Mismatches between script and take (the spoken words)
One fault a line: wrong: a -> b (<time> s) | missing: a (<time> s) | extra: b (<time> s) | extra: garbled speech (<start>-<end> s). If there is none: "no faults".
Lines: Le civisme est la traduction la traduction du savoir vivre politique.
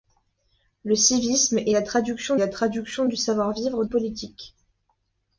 no faults